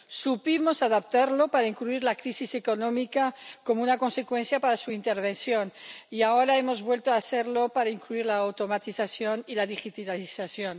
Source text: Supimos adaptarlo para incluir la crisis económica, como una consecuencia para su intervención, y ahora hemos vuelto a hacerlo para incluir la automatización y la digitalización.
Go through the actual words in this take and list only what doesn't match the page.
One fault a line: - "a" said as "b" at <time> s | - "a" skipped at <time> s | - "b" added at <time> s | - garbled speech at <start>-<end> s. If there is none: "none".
none